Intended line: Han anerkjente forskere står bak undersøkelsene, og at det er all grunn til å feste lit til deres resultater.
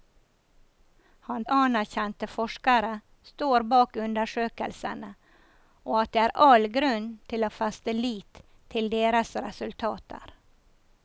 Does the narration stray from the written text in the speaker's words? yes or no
no